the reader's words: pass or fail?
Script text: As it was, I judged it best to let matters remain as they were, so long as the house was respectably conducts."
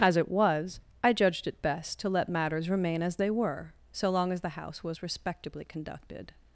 fail